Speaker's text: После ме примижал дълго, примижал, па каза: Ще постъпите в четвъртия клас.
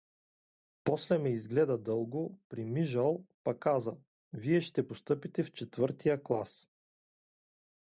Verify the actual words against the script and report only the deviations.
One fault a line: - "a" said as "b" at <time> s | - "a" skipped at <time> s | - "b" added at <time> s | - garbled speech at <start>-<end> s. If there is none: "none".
- "примижал" said as "изгледа" at 1.3 s
- "Вие" added at 4.3 s